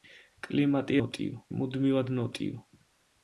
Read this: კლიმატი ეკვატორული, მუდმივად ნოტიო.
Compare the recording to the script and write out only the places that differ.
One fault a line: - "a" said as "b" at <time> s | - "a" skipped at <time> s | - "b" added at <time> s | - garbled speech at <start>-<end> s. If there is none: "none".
- "ეკვატორული" said as "ნოტიო" at 1.0 s